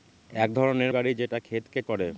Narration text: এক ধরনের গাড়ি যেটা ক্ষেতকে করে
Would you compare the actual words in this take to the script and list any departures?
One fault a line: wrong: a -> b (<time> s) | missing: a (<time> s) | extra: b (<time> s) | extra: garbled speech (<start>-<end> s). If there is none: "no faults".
no faults